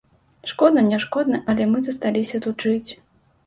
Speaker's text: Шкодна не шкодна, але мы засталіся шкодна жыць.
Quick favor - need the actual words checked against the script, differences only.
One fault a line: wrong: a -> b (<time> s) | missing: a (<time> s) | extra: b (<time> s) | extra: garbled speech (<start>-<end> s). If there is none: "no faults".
wrong: шкодна -> тут (2.5 s)